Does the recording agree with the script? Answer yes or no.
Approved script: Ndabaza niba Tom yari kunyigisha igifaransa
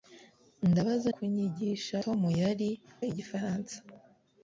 no